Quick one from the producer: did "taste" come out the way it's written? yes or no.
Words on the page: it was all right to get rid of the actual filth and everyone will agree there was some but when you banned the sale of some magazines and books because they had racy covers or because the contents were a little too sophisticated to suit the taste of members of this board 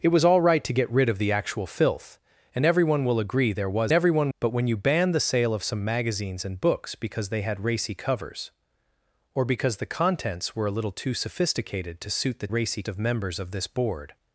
no